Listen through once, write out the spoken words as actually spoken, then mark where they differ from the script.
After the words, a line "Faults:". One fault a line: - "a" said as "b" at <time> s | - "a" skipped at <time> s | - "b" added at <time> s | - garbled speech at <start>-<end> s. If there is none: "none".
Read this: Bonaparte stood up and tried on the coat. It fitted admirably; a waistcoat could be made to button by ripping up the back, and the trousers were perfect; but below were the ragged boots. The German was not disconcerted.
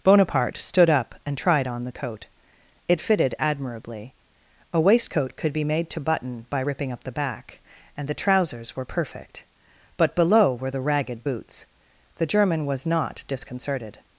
Bonaparte stood up and tried on the coat. It fitted admirably; a waistcoat could be made to button by ripping up the back, and the trousers were perfect; but below were the ragged boots. The German was not disconcerted.
Faults:
none